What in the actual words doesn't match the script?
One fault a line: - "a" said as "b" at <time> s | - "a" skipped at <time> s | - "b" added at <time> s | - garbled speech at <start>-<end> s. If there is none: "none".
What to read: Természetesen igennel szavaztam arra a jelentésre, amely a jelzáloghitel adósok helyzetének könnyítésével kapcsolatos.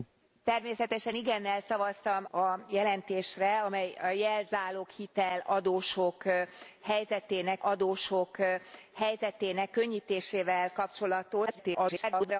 - "arra" skipped at 2.2 s
- "adósok helyzetének" added at 7.6 s
- garbled speech at 11.5-12.4 s